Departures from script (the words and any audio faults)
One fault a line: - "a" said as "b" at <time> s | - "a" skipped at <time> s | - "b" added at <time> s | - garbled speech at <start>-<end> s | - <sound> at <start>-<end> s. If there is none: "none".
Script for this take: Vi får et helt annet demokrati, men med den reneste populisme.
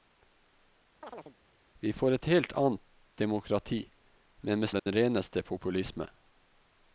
- chirp at 1.0-1.4 s
- dropout at 4.8-4.9 s